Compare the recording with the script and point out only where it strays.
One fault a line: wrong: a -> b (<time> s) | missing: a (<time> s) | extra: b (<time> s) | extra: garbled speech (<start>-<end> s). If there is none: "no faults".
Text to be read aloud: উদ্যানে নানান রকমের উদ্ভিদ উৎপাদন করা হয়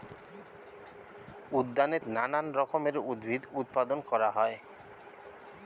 no faults